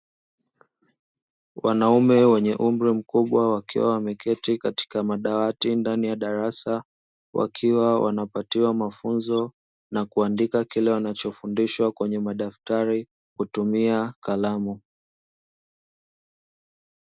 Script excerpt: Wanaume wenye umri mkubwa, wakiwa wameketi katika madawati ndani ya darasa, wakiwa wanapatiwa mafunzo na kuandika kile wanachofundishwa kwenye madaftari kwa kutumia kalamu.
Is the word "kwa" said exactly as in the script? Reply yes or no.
no